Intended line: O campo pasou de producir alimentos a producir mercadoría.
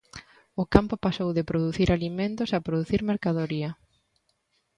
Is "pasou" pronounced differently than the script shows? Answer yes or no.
no